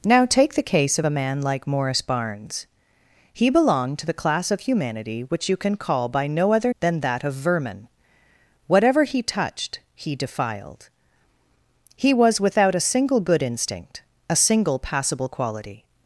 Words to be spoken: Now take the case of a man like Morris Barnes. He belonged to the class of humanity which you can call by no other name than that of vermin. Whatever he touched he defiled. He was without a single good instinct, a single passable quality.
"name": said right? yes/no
no